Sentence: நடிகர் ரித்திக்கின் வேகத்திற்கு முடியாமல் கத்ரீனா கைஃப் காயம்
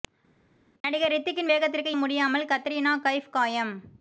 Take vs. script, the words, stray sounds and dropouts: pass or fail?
pass